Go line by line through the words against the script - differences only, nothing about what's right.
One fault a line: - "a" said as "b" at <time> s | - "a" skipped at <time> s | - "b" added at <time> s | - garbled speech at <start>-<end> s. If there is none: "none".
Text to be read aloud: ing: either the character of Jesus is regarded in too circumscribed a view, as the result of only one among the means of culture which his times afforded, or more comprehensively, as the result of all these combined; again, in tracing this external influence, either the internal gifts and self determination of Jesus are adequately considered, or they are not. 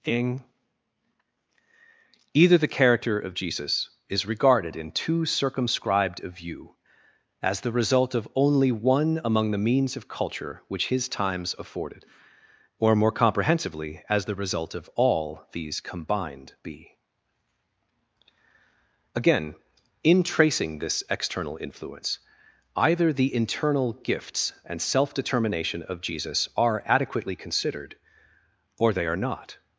- "be" added at 16.6 s